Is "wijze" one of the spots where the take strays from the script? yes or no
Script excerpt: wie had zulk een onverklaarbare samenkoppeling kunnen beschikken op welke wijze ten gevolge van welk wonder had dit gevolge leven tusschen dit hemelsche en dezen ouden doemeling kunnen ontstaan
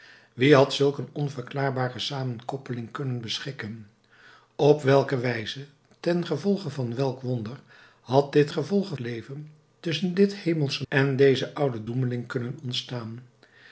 no